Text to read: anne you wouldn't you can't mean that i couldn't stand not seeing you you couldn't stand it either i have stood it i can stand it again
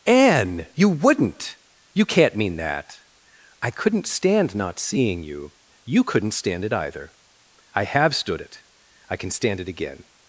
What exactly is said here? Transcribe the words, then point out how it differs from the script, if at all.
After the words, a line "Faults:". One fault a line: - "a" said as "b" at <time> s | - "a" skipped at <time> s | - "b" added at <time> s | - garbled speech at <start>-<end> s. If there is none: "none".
anne you wouldn't you can't mean that i couldn't stand not seeing you you couldn't stand it either i have stood it i can stand it again
Faults:
none